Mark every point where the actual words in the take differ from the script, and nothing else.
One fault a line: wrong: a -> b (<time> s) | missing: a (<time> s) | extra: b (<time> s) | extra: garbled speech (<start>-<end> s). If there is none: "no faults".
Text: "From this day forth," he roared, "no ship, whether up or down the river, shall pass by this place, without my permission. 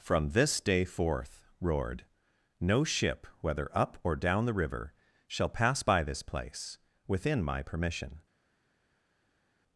missing: he (1.4 s)
wrong: without -> within (7.1 s)